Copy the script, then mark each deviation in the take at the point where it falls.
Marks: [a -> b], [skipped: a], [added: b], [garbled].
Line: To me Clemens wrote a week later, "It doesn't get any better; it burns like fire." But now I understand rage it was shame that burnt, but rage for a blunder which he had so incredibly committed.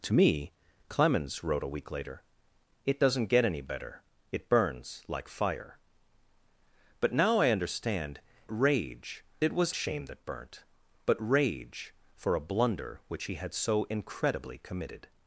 To me Clemens wrote a week later, "It doesn't get any better; it burns like fire." But now I understand rage it was shame that burnt, but rage for a blunder which he had so incredibly committed.